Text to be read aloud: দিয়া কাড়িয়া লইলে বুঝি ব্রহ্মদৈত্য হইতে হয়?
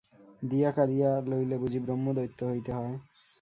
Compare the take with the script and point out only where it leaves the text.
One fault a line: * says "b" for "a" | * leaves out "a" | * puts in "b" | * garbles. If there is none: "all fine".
all fine